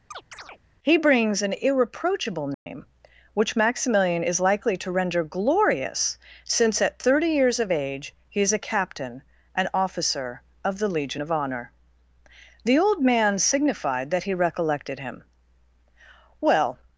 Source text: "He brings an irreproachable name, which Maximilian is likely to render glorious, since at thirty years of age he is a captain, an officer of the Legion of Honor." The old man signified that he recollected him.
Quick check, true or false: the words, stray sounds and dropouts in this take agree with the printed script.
false